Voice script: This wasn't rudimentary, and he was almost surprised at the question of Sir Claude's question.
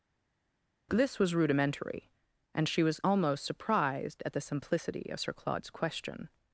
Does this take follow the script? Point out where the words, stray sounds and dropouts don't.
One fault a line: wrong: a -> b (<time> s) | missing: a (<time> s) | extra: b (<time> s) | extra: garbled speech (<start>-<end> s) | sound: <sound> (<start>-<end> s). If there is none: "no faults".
wrong: wasn't -> was (1.2 s)
wrong: he -> she (2.7 s)
wrong: question -> simplicity (4.4 s)